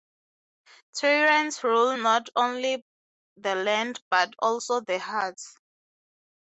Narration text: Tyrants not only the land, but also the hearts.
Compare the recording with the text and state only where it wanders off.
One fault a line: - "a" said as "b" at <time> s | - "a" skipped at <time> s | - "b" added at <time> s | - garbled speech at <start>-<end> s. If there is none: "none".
- "rule" added at 1.7 s